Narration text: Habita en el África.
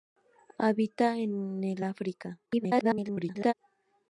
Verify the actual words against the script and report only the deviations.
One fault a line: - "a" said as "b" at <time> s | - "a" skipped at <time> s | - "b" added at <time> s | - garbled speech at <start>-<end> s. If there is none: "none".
- garbled speech at 2.5-3.5 s